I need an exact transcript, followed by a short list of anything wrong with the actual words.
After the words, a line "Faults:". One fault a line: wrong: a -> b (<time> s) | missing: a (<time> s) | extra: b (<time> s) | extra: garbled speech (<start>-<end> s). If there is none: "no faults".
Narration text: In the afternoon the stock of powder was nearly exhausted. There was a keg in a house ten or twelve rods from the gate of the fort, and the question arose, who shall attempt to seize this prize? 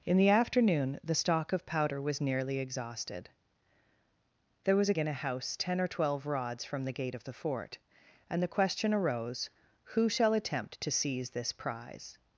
In the afternoon the stock of powder was nearly exhausted. There was a in a house ten or twelve rods from the gate of the fort, and the question arose, who shall attempt to seize this prize?
Faults:
missing: keg (5.0 s)